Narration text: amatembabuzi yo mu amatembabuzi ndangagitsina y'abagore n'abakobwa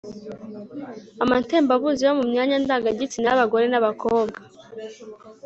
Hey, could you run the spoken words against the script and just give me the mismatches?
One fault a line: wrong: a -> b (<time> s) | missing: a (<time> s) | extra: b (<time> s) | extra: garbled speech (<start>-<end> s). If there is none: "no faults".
wrong: amatembabuzi -> myanya (2.3 s)